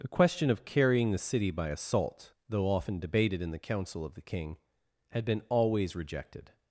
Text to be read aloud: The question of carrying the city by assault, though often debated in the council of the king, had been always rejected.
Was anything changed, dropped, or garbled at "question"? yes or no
no